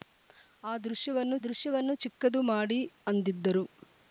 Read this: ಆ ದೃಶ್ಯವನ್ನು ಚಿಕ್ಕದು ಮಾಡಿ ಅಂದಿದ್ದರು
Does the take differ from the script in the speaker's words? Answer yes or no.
yes